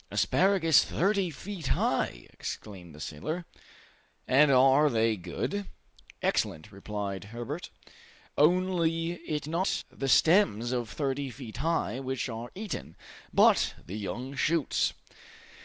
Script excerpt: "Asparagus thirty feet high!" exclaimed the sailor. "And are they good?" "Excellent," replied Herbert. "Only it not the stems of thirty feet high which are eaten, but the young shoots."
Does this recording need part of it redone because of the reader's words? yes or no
no